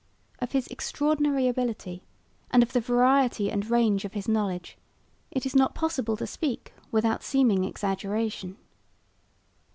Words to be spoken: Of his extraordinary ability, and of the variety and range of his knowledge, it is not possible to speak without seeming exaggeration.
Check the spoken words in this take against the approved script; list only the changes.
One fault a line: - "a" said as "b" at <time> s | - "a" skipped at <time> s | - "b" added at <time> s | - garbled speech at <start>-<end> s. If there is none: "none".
none